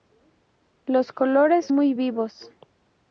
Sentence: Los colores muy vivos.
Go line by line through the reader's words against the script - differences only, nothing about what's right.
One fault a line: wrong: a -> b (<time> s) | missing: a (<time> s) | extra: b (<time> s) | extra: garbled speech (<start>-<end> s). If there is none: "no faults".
no faults